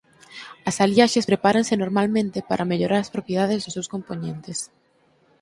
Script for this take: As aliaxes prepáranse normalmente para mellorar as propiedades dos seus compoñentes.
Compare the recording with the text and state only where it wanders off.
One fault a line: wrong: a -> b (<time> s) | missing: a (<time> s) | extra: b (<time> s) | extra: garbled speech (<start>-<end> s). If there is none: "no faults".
no faults